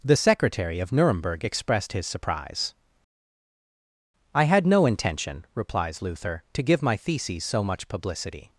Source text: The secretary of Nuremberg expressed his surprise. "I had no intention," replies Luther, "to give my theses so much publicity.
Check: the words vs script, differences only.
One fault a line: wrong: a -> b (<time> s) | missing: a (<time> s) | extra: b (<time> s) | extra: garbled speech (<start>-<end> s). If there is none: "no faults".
no faults